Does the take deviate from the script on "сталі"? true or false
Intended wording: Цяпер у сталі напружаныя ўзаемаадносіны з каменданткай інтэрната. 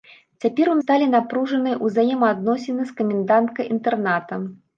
false